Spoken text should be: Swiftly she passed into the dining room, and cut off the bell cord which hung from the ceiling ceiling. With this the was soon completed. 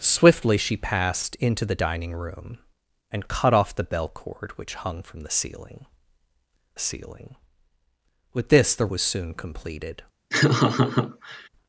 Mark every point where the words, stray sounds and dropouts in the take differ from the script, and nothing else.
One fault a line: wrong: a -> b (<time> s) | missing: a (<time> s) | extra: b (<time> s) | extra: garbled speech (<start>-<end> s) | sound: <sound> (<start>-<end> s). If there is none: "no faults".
sound: laugh (10.3-11.5 s)